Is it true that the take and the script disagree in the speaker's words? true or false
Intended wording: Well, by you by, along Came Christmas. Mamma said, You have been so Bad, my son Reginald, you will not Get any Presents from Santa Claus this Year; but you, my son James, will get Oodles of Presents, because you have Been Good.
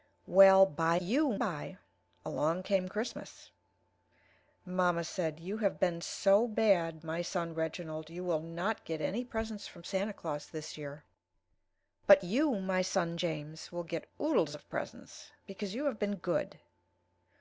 false